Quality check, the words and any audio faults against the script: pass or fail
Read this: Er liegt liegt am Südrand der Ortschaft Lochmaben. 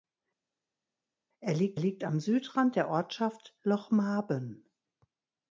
pass